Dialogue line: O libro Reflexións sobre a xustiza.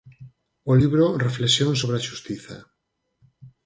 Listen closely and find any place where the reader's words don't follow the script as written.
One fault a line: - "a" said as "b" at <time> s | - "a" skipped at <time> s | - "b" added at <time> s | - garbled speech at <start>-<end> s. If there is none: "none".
none